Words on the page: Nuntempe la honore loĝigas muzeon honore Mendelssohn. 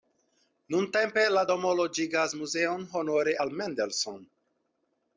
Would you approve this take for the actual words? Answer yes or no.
no